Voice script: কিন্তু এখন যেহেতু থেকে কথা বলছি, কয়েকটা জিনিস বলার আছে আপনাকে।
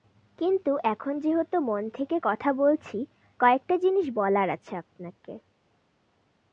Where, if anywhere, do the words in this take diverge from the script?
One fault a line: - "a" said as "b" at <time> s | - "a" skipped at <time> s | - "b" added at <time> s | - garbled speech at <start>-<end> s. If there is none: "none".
- "মন" added at 1.6 s